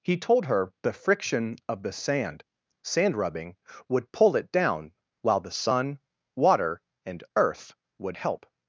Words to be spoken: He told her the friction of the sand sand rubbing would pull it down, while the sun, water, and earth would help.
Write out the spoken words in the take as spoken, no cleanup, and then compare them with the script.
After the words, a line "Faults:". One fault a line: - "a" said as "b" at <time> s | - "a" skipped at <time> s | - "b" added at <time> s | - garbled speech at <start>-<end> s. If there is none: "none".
He told her the friction of the sand sand rubbing would pull it down, while the sun, water, and earth would help.
Faults:
none